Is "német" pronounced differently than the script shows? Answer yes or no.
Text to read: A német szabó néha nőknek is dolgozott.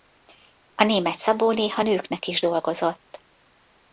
no